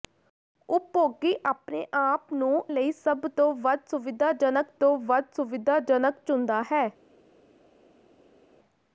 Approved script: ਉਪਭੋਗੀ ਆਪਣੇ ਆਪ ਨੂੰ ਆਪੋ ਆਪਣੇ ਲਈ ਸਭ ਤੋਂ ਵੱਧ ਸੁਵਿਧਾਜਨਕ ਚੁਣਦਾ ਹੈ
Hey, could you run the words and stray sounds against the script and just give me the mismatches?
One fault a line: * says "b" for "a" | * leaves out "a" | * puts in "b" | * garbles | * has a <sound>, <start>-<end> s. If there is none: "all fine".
* says "ਲਈ ਸਭ ਤੋਂ ਵੱਧ ਸੁਵਿਧਾਜਨਕ" for "ਆਪੋ ਆਪਣੇ ਲਈ ਸਭ"